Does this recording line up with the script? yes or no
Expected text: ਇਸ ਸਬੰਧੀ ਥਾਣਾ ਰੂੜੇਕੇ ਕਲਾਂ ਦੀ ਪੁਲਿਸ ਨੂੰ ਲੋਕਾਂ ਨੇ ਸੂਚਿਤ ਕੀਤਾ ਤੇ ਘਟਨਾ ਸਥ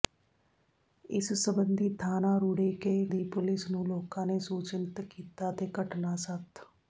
no